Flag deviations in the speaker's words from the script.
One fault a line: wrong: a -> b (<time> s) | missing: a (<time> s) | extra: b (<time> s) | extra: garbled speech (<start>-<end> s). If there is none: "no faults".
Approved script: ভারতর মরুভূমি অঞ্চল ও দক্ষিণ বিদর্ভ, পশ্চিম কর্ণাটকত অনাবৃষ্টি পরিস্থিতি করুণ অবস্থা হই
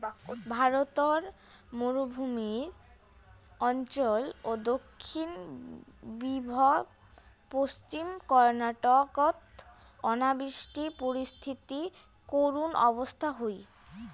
no faults